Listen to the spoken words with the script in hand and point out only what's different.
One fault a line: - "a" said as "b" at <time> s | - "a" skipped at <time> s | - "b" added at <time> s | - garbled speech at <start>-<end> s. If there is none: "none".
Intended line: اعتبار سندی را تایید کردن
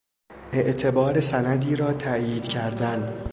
none